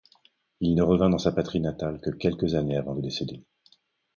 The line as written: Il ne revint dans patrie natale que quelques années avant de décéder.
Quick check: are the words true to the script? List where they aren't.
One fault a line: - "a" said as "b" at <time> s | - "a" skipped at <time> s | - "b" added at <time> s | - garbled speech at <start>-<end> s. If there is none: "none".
- "sa" added at 1.2 s